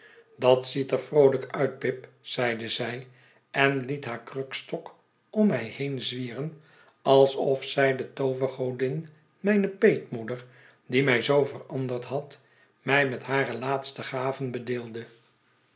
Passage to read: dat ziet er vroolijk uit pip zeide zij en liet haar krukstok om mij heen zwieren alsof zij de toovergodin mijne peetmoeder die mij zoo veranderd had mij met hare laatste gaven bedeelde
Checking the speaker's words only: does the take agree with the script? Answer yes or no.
yes